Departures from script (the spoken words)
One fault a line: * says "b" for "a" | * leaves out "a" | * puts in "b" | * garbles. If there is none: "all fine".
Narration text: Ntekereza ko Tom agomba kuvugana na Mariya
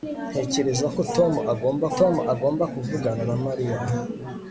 * puts in "Tom agomba"